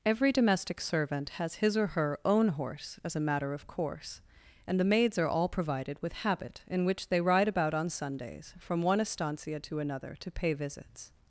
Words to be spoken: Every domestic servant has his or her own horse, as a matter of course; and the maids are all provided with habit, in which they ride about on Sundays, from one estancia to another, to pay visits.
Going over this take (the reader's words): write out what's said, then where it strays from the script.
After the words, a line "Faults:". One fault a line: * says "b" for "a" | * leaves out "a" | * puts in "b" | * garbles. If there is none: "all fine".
Every domestic servant has his or her own horse, as a matter of course; and the maids are all provided with habit, in which they ride about on Sundays, from one estancia to another, to pay visits.
Faults:
all fine